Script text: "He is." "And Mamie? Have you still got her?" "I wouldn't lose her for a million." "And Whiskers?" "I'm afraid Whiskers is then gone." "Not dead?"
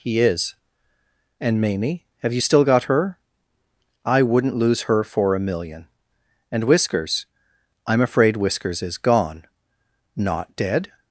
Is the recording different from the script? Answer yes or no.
yes